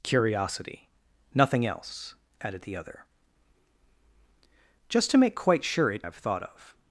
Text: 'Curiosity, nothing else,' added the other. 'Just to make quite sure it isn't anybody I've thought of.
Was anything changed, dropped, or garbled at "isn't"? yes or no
yes